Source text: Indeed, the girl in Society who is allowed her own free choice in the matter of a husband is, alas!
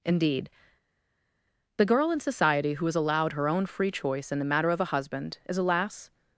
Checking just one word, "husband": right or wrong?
right